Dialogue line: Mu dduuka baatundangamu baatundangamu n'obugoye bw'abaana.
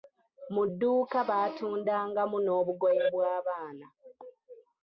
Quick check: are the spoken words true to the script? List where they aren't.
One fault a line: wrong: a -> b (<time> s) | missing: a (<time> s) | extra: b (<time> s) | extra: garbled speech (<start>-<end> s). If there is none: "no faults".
missing: baatundangamu (2.4 s)